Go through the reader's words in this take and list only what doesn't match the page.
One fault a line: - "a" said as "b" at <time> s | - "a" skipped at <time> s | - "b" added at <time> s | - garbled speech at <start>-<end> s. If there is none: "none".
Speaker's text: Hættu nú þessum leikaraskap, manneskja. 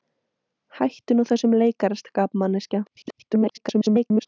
- garbled speech at 2.9-4.3 s